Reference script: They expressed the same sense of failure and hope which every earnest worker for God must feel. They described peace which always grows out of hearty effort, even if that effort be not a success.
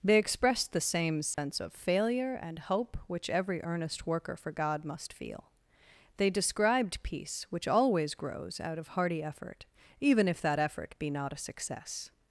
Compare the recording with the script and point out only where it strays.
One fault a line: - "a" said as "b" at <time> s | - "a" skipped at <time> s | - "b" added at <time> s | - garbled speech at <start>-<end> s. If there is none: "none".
none